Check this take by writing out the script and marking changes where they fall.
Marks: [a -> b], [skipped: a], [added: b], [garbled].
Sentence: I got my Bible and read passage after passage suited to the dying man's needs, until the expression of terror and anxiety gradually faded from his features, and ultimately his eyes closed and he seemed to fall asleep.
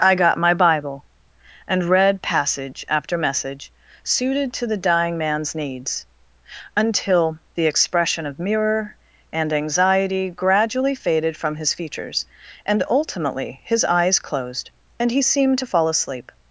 I got my Bible and read passage after [passage -> message] suited to the dying man's needs, until the expression of [terror -> mirror] and anxiety gradually faded from his features, and ultimately his eyes closed and he seemed to fall asleep.